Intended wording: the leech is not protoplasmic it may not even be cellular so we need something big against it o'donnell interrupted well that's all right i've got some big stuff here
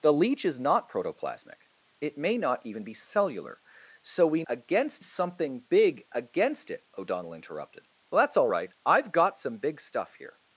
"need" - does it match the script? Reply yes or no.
no